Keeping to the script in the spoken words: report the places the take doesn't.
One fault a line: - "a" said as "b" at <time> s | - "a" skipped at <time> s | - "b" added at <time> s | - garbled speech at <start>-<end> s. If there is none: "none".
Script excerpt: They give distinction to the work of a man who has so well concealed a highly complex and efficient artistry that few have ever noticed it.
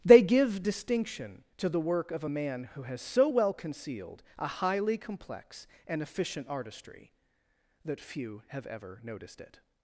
none